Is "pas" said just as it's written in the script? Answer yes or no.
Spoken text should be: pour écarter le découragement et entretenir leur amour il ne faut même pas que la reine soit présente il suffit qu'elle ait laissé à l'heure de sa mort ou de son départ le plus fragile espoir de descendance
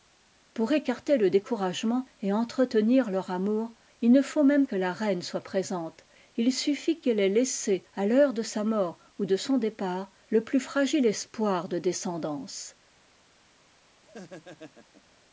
no